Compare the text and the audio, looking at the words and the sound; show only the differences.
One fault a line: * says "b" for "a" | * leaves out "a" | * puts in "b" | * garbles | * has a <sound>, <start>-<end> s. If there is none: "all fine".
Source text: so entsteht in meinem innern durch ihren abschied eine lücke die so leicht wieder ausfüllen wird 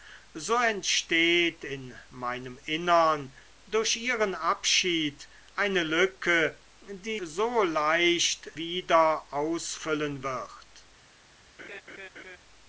* has a laugh, 11.6-12.4 s